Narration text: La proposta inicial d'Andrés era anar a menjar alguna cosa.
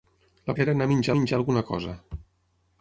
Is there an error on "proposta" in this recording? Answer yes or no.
yes